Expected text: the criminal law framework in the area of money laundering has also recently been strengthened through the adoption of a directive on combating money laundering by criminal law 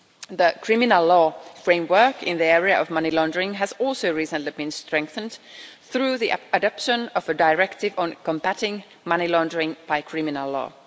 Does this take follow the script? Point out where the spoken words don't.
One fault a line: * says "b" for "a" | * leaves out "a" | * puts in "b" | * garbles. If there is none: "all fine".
all fine